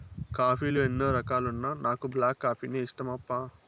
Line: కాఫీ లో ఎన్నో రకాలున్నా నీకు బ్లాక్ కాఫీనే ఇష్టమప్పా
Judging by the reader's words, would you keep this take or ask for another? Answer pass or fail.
fail